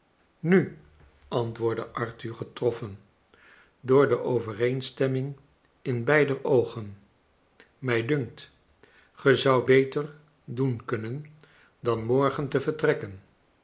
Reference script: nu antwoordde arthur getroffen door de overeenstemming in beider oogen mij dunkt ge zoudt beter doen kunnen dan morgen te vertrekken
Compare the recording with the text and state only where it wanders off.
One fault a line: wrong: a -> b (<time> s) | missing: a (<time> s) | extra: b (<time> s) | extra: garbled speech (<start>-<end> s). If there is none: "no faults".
no faults